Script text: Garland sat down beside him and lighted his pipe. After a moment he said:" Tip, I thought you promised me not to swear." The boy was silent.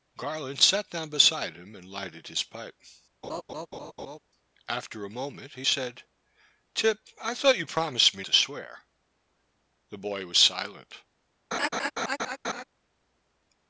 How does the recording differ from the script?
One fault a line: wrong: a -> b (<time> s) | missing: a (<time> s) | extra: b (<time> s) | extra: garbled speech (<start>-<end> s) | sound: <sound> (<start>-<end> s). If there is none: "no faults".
sound: laugh (3.2-4.2 s)
missing: not (8.2 s)
sound: laugh (11.5-12.6 s)